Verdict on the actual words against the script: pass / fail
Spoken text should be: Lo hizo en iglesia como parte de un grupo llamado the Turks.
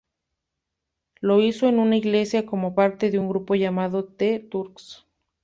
fail